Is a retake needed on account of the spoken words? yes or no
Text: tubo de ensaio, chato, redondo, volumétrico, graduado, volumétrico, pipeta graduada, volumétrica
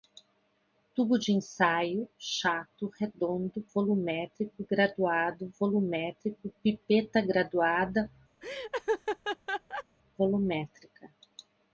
no